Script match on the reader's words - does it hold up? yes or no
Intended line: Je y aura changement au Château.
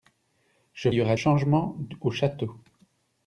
yes